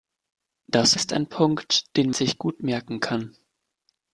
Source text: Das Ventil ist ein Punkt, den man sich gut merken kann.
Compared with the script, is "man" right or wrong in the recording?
wrong